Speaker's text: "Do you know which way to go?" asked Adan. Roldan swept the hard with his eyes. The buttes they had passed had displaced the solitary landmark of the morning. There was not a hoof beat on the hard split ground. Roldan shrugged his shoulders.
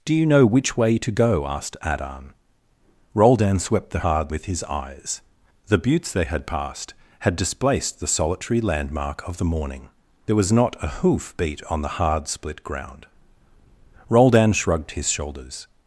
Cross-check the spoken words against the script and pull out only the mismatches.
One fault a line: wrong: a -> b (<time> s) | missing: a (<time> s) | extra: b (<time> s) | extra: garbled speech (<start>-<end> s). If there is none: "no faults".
no faults